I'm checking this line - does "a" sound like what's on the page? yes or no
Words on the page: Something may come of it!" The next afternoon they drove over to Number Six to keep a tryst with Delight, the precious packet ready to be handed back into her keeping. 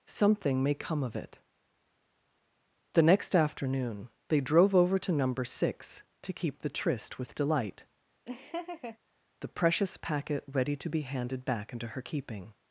no